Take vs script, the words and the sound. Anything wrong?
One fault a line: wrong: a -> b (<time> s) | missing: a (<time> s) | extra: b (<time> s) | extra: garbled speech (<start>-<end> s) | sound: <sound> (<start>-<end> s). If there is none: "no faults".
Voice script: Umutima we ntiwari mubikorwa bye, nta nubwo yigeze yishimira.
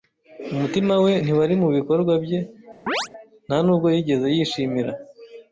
sound: chirp (2.9-3.1 s)